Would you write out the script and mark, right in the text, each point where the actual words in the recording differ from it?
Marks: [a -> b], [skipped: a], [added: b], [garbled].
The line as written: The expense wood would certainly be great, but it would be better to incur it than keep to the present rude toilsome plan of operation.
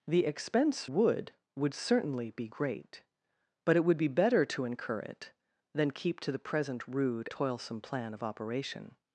The expense wood would certainly be great, but it would be better to incur it than keep to the present rude toilsome plan of operation.